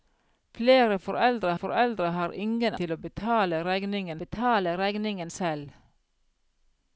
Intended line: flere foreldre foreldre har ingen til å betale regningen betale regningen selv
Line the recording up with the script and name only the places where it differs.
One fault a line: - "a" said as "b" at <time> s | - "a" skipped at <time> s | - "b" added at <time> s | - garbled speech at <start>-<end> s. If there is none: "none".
none